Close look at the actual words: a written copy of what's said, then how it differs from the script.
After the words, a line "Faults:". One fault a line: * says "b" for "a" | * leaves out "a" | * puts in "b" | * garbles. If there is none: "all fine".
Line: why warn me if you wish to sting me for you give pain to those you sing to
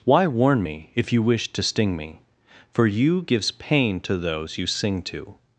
why warn me if you wish to sting me for you gives pain to those you sing to
Faults:
* says "gives" for "give"